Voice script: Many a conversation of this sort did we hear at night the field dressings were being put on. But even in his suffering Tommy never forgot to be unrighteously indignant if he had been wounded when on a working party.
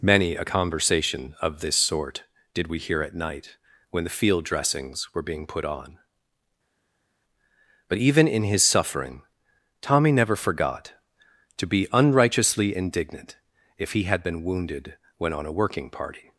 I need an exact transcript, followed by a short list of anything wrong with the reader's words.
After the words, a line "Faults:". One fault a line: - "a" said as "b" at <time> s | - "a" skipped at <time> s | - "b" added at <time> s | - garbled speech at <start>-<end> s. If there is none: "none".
Many a conversation of this sort did we hear at night when the field dressings were being put on. But even in his suffering Tommy never forgot to be unrighteously indignant if he had been wounded when on a working party.
Faults:
- "when" added at 3.9 s